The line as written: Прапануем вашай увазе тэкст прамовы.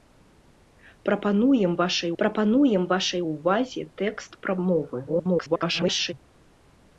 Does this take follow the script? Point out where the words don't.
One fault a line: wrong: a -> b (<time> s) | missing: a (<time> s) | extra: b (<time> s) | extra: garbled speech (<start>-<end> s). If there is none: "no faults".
extra: прапануем вашай (2.2 s)
extra: garbled speech (5.1-6.1 s)